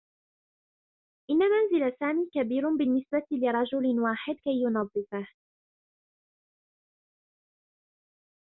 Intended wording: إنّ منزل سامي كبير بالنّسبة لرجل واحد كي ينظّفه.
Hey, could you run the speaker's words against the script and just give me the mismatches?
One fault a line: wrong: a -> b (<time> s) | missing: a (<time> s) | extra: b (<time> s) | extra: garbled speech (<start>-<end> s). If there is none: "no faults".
no faults